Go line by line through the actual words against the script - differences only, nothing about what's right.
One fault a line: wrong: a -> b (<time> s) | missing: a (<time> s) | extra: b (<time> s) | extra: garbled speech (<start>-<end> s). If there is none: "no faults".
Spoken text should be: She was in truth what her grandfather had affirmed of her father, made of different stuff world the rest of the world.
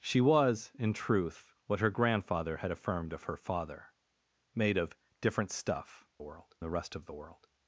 no faults